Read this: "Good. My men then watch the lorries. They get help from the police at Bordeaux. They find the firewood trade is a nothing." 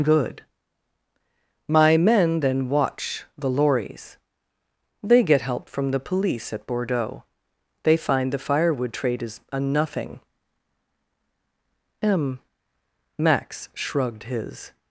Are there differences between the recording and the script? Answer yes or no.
yes